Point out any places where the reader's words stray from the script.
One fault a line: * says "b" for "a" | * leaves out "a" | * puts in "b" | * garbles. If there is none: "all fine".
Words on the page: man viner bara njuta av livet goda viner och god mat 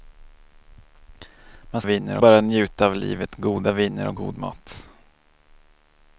all fine